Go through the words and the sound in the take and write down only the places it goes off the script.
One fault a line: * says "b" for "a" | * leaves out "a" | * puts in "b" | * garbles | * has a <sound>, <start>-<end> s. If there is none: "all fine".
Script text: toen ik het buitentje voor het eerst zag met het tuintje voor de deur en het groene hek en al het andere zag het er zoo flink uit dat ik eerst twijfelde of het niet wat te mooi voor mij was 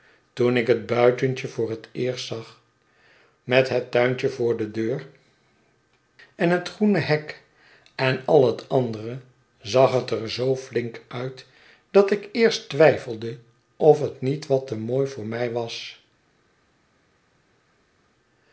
all fine